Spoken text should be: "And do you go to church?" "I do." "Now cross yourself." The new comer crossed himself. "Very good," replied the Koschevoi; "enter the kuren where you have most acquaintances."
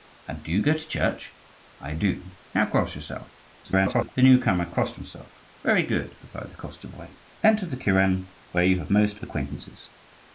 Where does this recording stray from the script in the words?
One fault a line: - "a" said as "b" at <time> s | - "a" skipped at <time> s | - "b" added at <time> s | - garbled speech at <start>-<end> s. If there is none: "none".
- garbled speech at 3.6-4.1 s